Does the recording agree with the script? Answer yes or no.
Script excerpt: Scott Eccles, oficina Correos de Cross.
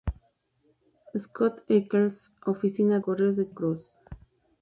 yes